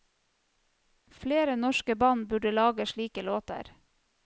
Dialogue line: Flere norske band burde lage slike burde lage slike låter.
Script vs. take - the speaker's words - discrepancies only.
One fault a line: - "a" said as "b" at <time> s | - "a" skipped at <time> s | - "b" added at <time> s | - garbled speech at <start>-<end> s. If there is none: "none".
- "burde lage slike" skipped at 3.2 s